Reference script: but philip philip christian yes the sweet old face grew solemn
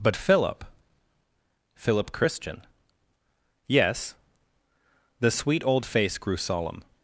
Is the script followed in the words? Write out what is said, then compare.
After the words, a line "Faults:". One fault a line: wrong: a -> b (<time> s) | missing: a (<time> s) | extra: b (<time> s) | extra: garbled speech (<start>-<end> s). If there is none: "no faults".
but philip philip christian yes the sweet old face grew solemn
Faults:
no faults